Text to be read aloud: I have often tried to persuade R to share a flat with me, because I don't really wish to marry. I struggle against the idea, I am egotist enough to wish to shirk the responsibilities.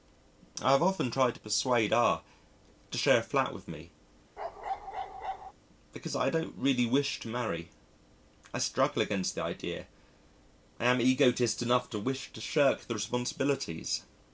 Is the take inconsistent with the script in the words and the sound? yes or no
yes